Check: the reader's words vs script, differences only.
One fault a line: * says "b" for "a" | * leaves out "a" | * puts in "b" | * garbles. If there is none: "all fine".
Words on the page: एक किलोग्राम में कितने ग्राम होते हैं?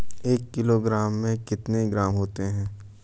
all fine